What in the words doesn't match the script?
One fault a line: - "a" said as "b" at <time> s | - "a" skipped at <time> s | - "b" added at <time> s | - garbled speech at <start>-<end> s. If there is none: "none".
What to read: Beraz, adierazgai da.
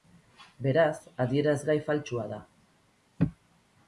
- "faltsua" added at 1.9 s